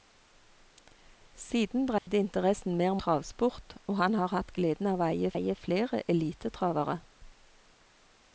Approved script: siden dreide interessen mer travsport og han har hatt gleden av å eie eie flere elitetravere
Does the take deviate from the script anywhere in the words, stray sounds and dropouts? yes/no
yes